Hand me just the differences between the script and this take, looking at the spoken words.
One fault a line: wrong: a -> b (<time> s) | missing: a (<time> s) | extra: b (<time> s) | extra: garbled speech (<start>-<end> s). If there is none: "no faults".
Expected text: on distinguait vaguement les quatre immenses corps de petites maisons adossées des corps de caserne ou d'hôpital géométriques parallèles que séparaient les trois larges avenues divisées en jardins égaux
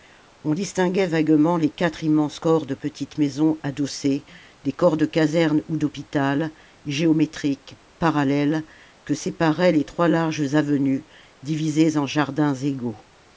no faults